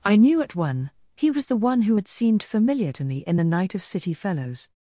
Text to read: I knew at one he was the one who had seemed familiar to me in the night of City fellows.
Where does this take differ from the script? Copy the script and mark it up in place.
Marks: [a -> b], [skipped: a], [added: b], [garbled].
I knew at one he was the one who had seemed familiar to me in the night of City fellows.